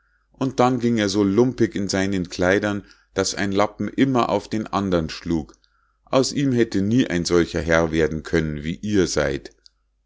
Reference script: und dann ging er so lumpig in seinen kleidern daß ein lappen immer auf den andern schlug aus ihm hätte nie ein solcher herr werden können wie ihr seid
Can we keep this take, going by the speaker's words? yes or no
yes